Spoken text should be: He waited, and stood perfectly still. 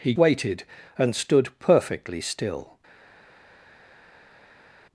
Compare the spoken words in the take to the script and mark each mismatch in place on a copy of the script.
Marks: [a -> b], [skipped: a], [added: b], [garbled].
He waited, and stood perfectly still.